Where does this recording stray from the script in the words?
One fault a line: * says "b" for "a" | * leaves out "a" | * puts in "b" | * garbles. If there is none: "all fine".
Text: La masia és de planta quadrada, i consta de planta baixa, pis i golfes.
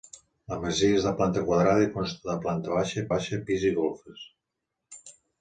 * puts in "baixa"